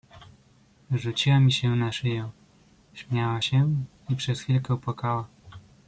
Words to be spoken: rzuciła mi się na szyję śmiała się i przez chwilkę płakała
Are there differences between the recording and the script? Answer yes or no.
no